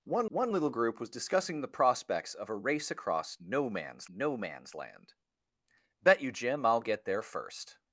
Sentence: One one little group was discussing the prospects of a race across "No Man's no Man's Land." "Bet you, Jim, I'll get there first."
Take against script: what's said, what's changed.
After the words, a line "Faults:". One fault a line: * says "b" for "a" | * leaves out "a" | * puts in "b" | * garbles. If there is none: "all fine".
One one little group was discussing the prospects of a race across "No Man's no Man's Land." "Bet you, Jim, I'll get there first."
Faults:
all fine